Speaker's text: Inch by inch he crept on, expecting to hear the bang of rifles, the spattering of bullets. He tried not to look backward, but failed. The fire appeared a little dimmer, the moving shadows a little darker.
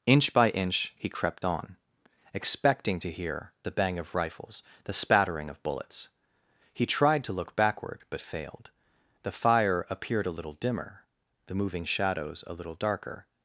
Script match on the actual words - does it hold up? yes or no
no